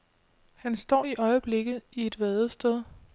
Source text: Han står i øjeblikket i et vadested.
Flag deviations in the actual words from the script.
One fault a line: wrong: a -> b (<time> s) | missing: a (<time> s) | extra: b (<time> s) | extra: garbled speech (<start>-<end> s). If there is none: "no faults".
no faults